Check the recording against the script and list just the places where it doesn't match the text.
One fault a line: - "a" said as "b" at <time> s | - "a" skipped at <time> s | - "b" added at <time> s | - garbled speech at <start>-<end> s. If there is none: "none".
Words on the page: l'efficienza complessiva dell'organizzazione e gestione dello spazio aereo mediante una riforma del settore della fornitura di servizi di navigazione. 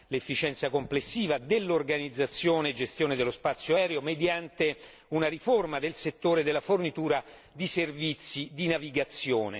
none